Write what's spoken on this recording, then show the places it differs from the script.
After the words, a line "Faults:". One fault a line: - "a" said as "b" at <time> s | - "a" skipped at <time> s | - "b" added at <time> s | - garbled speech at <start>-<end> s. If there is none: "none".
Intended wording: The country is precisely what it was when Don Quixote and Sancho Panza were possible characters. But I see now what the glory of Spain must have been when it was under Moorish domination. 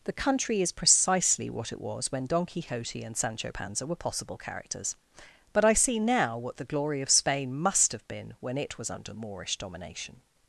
The country is precisely what it was when Don Quixote and Sancho Panza were possible characters. But I see now what the glory of Spain must have been when it was under Moorish domination.
Faults:
none